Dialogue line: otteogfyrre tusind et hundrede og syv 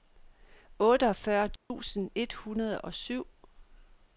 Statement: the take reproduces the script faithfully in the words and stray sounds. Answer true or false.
false